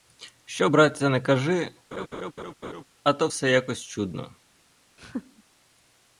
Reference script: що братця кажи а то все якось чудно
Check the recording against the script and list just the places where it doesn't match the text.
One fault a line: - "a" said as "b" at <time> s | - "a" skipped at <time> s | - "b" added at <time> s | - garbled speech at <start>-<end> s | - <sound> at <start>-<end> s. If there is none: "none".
- "не" added at 1.1 s
- laugh at 1.9-2.8 s
- laugh at 5.0-5.4 s